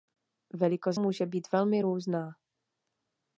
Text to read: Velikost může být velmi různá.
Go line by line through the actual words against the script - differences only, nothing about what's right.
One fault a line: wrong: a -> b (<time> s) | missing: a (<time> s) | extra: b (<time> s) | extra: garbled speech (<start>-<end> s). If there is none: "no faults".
no faults